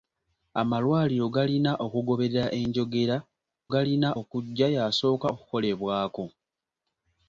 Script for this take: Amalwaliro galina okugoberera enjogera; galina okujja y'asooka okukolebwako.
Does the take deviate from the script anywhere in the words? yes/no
no